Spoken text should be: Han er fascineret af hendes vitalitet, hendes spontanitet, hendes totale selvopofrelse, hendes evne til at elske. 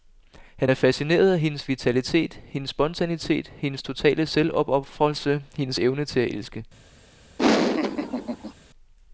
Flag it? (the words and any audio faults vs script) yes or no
yes